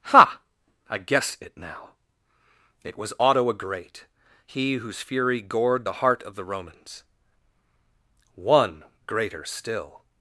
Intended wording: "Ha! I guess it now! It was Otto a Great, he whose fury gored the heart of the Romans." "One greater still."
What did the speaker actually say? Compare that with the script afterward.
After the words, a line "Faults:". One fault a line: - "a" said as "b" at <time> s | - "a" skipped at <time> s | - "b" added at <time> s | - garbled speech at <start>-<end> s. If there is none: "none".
"Ha! I guess it now! It was Otto a Great, he whose fury gored the heart of the Romans." "One greater still."
Faults:
none